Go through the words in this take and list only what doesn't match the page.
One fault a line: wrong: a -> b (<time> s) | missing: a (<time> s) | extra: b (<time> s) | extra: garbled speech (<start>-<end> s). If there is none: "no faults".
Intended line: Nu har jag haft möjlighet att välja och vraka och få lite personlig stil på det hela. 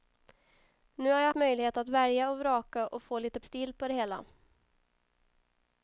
missing: haft (1.3 s)
missing: personlig (3.4 s)